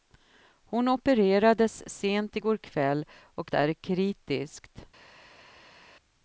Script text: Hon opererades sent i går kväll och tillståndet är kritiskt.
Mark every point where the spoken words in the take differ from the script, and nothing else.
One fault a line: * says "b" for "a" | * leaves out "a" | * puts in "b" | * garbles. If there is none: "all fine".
* leaves out "tillståndet"